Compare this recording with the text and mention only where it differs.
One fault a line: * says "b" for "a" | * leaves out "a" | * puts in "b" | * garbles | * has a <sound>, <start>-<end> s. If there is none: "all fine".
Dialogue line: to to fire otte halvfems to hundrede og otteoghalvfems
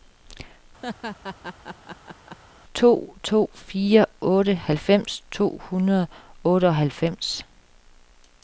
* has a laugh, 0.8-2.4 s